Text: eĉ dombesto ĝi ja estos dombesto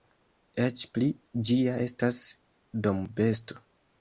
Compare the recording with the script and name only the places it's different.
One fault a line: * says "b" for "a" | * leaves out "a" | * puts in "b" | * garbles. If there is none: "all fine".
* says "pli" for "dombesto"
* says "estas" for "estos"